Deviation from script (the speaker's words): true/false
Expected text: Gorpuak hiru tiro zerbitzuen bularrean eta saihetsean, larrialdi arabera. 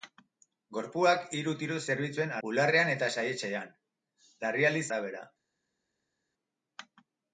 false